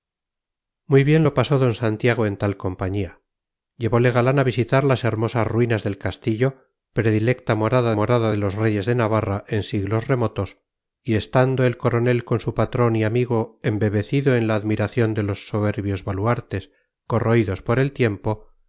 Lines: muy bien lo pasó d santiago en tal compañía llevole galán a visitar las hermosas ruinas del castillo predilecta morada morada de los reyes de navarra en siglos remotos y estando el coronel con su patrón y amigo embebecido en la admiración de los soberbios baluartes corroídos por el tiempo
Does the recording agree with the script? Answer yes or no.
yes